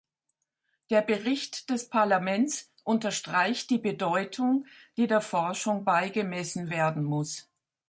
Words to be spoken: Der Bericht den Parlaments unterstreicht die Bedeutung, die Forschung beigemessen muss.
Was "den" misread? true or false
true